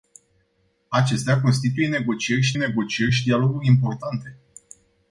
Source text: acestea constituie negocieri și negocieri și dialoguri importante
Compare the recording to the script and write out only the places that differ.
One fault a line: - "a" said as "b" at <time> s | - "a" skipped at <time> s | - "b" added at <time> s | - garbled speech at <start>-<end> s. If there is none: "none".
none